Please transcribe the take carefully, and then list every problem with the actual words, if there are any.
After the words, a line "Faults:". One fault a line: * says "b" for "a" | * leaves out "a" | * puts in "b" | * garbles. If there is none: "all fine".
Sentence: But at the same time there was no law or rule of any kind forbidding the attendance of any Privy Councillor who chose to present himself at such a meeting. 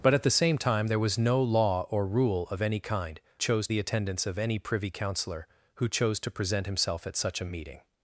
But at the same time there was no law or rule of any kind chose the attendance of any Privy Councillor who chose to present himself at such a meeting.
Faults:
* says "chose" for "forbidding"